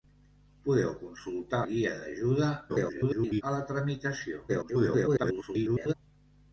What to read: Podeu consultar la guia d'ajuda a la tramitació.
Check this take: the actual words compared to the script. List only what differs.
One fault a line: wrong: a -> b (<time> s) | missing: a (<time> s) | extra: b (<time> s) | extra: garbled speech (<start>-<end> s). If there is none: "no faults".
missing: la (1.6 s)
extra: garbled speech (2.7-3.4 s)
extra: garbled speech (4.5-5.9 s)